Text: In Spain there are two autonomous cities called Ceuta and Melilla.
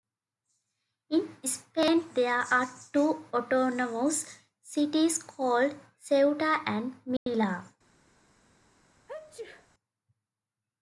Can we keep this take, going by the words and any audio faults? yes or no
no